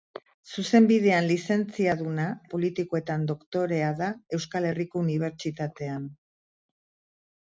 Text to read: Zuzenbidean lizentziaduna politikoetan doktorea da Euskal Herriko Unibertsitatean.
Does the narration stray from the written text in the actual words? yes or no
no